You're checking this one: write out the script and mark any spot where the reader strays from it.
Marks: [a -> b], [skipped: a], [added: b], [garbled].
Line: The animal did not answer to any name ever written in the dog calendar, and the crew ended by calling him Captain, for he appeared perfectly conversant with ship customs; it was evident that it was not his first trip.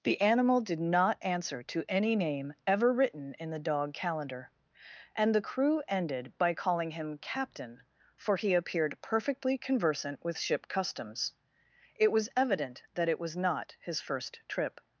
The animal did not answer to any name ever written in the dog calendar, and the crew ended by calling him Captain, for he appeared perfectly conversant with ship customs; it was evident that it was not his first trip.